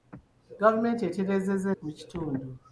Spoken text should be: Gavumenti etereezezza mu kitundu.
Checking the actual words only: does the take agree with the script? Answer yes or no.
yes